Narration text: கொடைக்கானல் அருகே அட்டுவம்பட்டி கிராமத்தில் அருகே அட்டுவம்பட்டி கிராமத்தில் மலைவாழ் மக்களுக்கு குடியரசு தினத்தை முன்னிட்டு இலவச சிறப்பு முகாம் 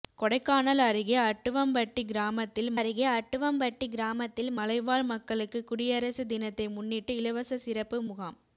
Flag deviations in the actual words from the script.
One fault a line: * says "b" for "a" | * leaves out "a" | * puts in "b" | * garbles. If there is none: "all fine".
all fine